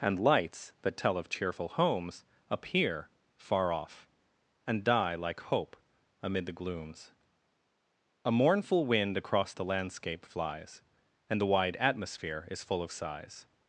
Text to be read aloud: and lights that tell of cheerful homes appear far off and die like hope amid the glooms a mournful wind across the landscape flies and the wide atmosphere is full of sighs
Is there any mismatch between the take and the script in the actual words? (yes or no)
no